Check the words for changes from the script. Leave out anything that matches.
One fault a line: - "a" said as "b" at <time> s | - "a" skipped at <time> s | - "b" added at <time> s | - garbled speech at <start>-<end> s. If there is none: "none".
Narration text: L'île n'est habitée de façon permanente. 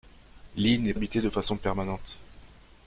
none